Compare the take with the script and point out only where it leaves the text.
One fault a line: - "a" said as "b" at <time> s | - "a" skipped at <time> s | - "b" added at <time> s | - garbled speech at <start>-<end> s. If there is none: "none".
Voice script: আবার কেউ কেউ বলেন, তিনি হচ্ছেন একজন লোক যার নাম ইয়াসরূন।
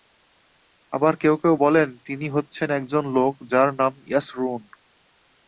none